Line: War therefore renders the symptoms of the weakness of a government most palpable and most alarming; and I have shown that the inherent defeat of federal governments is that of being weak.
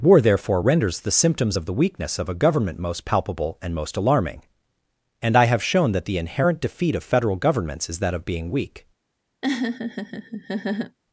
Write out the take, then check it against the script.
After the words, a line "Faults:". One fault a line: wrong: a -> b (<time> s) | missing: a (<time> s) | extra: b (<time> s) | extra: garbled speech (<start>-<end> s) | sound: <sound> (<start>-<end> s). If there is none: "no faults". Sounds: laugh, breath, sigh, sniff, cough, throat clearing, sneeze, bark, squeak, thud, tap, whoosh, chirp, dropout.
War therefore renders the symptoms of the weakness of a government most palpable and most alarming; and I have shown that the inherent defeat of federal governments is that of being weak.
Faults:
sound: laugh (9.4-11.0 s)